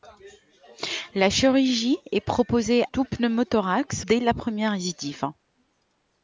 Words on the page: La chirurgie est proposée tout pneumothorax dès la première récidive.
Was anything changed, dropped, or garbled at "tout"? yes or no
no